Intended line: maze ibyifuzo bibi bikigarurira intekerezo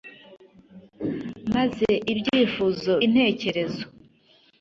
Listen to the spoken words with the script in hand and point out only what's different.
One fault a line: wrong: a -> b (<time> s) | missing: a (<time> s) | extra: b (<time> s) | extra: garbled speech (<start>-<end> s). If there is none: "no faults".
missing: bibi bikigarurira (2.9 s)